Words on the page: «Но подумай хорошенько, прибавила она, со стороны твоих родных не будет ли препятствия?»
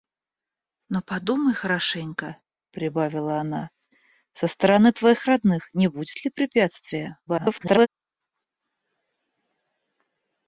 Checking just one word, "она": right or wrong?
right